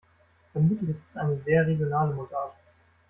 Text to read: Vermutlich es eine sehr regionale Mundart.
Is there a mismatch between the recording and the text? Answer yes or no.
yes